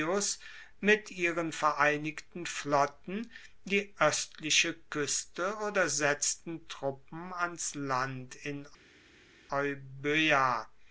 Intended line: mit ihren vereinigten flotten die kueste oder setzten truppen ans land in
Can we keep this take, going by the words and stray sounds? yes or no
no